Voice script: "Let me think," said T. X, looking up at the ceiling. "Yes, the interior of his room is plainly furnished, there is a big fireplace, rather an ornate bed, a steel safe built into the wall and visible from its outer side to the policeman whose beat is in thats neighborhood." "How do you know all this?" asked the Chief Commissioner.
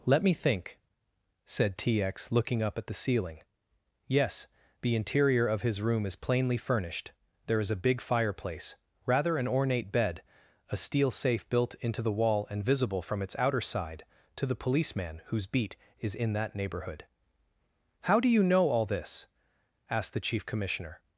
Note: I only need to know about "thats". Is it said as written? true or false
false